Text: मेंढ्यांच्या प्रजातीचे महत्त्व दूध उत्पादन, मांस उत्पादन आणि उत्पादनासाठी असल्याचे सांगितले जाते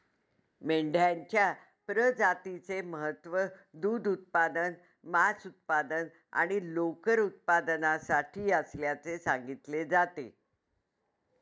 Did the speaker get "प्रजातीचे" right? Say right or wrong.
right